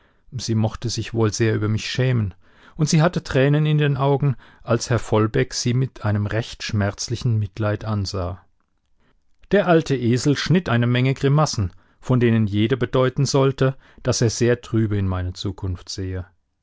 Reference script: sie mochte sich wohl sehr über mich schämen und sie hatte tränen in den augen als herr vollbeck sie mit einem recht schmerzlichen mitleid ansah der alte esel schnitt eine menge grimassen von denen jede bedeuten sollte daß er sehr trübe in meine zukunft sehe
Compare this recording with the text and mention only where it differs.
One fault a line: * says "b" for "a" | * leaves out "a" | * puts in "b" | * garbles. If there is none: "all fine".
all fine